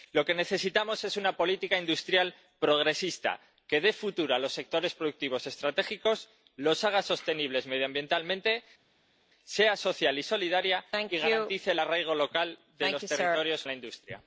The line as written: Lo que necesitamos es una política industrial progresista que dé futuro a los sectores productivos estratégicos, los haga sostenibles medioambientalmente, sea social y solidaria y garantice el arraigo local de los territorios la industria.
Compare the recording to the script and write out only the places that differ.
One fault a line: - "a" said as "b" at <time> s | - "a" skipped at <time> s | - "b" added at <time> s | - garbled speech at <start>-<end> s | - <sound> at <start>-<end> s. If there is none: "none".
none